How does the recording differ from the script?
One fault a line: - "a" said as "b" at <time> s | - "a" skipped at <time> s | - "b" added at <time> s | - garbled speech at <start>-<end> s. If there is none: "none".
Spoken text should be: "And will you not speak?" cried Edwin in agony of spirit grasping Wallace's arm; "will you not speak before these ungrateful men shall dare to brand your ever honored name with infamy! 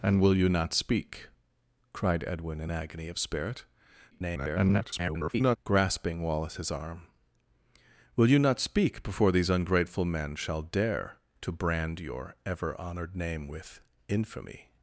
- garbled speech at 4.1-5.6 s